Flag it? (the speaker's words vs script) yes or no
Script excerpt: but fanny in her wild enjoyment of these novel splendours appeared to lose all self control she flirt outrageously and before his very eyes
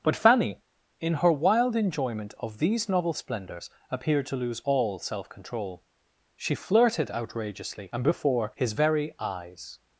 yes